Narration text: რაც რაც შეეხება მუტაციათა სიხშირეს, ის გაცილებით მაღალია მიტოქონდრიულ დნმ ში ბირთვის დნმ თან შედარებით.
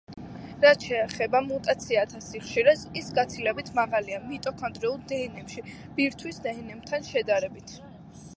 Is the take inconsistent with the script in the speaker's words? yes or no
yes